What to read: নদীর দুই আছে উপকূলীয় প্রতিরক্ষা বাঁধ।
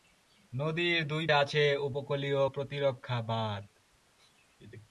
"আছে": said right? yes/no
yes